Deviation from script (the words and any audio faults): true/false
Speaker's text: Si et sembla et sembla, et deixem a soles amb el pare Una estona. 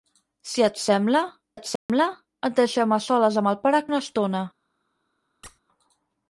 true